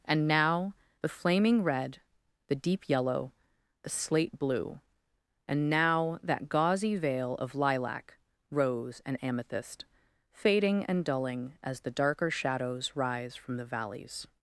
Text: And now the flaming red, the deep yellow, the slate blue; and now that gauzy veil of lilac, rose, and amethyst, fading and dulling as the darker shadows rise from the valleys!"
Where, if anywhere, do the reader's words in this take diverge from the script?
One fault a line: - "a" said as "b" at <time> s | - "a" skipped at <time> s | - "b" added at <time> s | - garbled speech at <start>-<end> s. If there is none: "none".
none